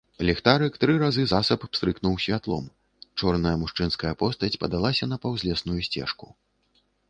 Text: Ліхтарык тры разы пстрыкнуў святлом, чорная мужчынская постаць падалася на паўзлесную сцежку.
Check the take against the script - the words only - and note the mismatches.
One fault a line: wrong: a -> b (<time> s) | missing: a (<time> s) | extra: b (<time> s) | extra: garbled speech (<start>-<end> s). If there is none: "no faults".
extra: засаб (1.3 s)